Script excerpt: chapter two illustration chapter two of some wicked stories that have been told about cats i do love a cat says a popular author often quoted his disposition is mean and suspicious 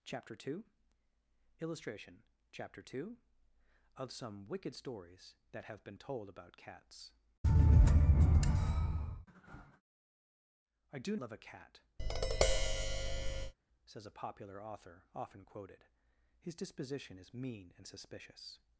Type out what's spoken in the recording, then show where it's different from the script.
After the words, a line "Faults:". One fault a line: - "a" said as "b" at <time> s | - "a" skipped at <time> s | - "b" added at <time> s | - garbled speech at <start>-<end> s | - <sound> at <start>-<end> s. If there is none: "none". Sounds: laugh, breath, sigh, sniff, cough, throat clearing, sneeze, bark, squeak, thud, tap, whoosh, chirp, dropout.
chapter two illustration chapter two of some wicked stories that have been told about cats i do love a cat says a popular author often quoted his disposition is mean and suspicious
Faults:
- tap at 12.0-13.5 s